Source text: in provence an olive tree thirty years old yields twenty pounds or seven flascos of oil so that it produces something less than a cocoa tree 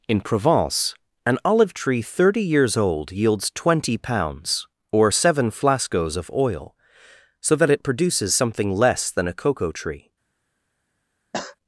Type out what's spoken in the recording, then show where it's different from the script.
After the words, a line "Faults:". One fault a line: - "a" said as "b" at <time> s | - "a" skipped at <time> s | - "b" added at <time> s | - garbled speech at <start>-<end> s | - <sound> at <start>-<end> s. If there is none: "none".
in provence an olive tree thirty years old yields twenty pounds or seven flascos of oil so that it produces something less than a cocoa tree
Faults:
- cough at 11.3-11.6 s